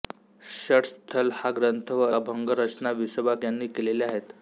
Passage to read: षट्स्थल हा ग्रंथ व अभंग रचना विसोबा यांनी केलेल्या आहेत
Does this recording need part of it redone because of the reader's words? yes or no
no